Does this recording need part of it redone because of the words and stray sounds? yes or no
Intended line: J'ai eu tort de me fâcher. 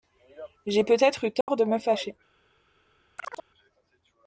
yes